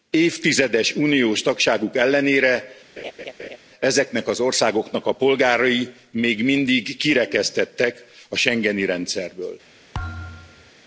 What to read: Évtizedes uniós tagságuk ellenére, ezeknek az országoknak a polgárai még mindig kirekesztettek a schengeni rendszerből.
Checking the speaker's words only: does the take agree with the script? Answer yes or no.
yes